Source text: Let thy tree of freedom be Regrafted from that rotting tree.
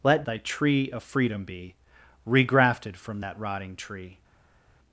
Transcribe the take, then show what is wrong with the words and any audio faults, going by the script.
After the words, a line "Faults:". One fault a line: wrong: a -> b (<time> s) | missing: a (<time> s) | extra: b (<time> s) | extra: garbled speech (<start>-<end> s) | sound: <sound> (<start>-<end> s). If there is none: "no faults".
Let thy tree of freedom be Regrafted from that rotting tree.
Faults:
no faults